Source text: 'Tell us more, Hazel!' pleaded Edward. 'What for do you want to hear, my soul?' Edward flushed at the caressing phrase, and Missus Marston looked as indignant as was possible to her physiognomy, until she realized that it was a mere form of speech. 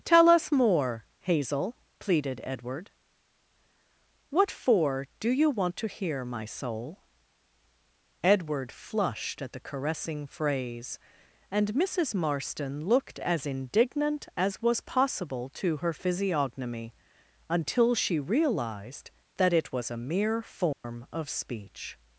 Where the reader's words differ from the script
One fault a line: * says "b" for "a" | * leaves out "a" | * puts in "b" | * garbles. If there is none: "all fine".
all fine